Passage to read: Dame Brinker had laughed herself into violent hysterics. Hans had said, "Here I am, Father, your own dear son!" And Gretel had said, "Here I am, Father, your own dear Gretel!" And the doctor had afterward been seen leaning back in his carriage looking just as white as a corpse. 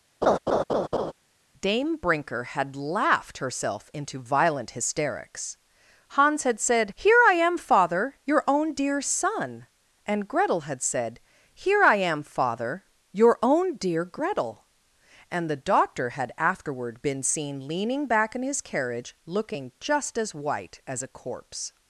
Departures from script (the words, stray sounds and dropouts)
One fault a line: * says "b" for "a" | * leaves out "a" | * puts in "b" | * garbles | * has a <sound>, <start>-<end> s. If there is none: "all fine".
* has a laugh, 0.2-1.1 s